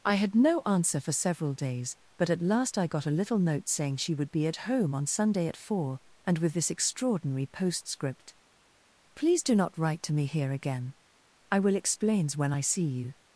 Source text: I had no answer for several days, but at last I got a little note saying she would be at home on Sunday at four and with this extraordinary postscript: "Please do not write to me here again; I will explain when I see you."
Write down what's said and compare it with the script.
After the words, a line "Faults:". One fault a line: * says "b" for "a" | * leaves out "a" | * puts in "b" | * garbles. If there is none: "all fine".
I had no answer for several days, but at last I got a little note saying she would be at home on Sunday at four and with this extraordinary postscript: "Please do not write to me here again; I will explains when I see you."
Faults:
* says "explains" for "explain"